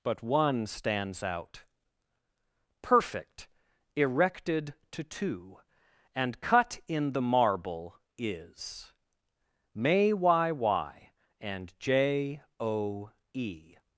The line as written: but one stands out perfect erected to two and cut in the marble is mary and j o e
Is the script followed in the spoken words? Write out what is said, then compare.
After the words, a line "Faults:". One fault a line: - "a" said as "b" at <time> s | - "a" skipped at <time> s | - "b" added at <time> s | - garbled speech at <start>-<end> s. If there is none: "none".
but one stands out perfect erected to two and cut in the marble is may y y and j o e
Faults:
- "mary" said as "may y y" at 9.7 s